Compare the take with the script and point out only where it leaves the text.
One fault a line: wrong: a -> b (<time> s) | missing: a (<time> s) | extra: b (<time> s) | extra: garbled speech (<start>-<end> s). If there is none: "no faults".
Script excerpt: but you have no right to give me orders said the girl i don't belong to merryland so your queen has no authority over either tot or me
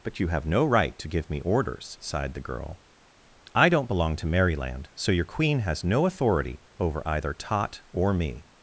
wrong: said -> sighed (2.0 s)